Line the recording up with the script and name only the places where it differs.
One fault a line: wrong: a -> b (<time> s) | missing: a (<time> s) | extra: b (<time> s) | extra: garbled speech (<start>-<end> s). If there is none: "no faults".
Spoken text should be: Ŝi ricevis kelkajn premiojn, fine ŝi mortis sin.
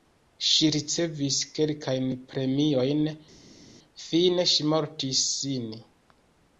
no faults